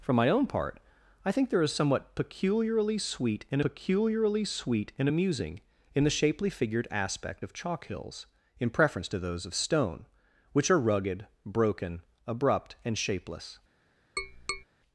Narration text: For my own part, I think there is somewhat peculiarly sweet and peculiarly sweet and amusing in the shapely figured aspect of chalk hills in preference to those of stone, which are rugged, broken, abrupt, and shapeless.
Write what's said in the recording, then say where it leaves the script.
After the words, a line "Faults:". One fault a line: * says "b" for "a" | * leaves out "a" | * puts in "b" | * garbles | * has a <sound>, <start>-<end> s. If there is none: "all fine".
For my own part, I think there is somewhat peculiarly sweet and peculiarly sweet and amusing in the shapely figured aspect of chalk hills in preference to those of stone, which are rugged, broken, abrupt, and shapeless.
Faults:
* has a tap, 14.2-14.6 s